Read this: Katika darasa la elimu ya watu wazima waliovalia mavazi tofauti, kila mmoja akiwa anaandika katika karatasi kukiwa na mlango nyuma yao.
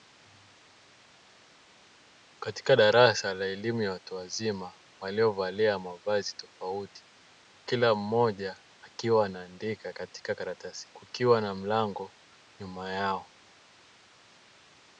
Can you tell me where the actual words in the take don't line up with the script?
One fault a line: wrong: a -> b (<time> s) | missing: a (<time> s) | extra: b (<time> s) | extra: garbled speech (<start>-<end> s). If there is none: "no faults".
no faults